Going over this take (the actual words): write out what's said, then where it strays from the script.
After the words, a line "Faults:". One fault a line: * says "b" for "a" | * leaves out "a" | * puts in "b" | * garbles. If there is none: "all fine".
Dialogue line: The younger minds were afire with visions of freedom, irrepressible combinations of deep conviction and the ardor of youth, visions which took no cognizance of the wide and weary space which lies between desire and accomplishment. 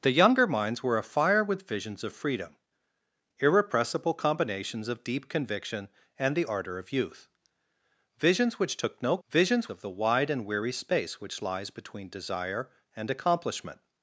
The younger minds were afire with visions of freedom, irrepressible combinations of deep conviction and the ardor of youth, visions which took no visions of the wide and weary space which lies between desire and accomplishment.
Faults:
* says "visions" for "cognizance"